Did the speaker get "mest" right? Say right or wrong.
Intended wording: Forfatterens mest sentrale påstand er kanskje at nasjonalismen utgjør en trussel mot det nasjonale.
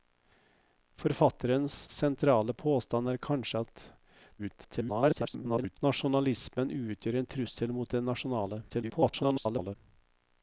wrong